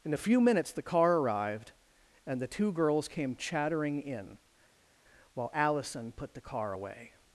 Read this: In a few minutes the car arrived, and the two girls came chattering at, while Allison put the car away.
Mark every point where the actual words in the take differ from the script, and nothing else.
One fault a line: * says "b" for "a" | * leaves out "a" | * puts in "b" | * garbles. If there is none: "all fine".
* says "in" for "at"